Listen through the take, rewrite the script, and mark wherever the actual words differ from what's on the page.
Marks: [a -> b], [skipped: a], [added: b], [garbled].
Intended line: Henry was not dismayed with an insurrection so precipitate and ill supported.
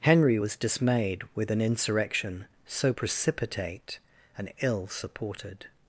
Henry was [skipped: not] dismayed with an insurrection so precipitate and ill supported.